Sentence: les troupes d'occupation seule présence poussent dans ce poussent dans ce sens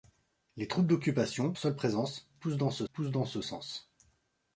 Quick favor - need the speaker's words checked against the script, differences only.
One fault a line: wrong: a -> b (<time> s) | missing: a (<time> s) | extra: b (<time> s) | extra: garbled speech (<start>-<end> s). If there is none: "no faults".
no faults